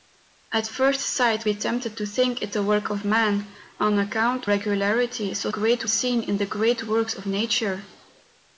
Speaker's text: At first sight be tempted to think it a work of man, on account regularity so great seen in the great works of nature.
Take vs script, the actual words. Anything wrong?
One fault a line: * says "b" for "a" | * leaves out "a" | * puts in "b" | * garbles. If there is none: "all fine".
all fine